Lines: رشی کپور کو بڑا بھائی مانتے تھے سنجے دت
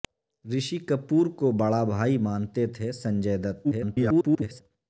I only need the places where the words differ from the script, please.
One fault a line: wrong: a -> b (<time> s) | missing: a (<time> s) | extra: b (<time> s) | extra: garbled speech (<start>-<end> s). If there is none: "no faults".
extra: garbled speech (3.6-4.6 s)